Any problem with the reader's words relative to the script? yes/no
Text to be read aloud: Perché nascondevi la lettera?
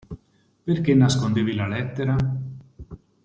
no